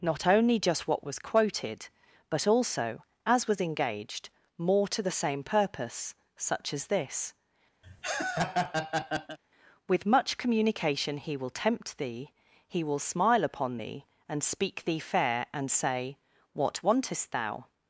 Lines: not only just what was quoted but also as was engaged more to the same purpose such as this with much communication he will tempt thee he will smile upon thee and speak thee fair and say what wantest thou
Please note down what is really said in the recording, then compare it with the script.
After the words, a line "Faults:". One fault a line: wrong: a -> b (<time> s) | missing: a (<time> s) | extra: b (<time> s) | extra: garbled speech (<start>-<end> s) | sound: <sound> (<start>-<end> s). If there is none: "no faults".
not only just what was quoted but also as was engaged more to the same purpose such as this with much communication he will tempt thee he will smile upon thee and speak thee fair and say what wantest thou
Faults:
sound: laugh (7.8-9.4 s)